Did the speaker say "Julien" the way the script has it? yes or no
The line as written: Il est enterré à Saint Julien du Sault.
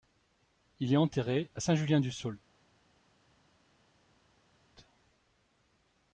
yes